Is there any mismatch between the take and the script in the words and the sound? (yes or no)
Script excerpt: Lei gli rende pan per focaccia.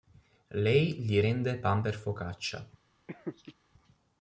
yes